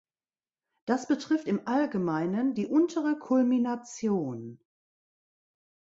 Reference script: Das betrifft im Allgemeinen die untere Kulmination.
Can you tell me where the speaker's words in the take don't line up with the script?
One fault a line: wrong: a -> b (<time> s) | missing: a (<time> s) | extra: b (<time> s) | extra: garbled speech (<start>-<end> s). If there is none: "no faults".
no faults